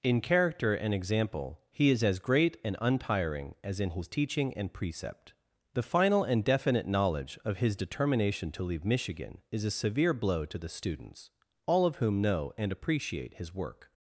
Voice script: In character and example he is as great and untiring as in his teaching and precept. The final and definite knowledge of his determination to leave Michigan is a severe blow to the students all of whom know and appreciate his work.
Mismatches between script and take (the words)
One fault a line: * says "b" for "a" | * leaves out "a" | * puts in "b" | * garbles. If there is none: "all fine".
all fine